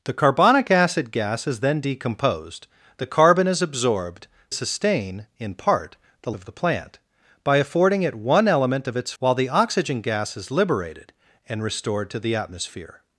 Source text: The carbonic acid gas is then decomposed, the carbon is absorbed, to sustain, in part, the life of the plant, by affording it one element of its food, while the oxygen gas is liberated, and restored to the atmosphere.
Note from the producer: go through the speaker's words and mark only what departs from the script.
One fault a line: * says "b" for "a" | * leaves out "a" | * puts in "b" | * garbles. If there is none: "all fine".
* leaves out "to"
* leaves out "life"
* leaves out "food"